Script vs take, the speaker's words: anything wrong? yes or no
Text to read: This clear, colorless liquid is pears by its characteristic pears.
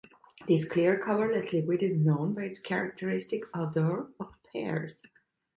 yes